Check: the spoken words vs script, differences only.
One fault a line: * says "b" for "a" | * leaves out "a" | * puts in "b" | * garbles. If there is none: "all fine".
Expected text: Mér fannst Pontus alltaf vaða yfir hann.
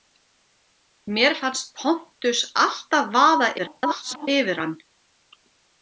* garbles